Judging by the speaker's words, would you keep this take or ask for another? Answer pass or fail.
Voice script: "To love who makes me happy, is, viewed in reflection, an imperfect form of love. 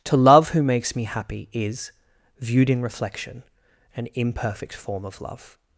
pass